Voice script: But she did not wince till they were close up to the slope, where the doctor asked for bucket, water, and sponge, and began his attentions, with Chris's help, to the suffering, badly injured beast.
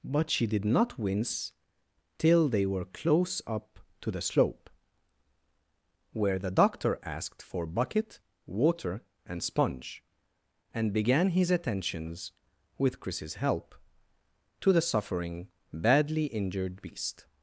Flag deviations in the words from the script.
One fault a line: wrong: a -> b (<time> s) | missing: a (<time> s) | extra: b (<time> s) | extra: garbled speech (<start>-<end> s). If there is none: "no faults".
no faults